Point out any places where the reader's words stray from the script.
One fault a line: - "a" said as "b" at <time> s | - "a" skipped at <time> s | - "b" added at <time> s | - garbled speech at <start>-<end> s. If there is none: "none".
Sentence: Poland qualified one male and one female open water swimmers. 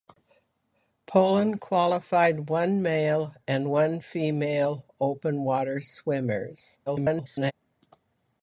- garbled speech at 6.9-7.5 s